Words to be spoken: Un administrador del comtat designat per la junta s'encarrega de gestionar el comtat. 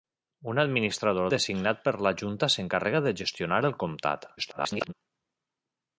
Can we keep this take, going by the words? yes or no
no